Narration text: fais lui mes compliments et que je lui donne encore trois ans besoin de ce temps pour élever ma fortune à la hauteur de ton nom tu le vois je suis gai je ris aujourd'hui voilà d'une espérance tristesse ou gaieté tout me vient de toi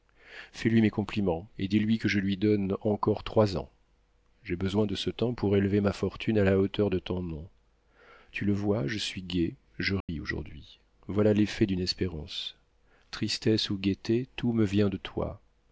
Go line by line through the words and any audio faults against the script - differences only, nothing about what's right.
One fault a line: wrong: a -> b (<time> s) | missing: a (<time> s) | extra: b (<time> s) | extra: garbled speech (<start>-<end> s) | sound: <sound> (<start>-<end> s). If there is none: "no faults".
extra: dis lui (1.7 s)
extra: j'ai (4.4 s)
sound: dropout (10.0-10.1 s)
extra: l'effet (11.3 s)